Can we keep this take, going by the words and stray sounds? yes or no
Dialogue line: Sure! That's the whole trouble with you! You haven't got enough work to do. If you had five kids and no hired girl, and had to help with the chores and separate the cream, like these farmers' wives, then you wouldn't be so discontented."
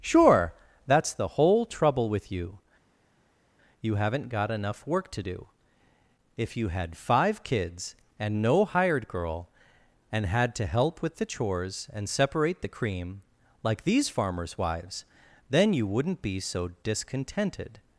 yes